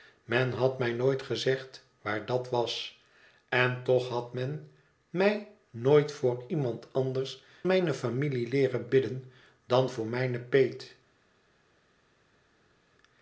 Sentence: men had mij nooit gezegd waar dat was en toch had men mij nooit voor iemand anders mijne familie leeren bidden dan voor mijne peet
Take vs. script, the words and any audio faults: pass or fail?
pass